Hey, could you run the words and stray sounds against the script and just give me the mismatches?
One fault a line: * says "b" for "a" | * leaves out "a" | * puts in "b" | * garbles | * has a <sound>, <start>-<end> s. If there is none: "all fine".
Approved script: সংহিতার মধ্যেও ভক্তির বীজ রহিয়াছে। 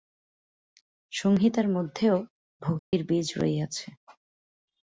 * has a dropout, 2.8-2.9 s